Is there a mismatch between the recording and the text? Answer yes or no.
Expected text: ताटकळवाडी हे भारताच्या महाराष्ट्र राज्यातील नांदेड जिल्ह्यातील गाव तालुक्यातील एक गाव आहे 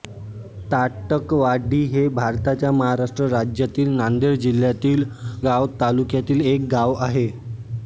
no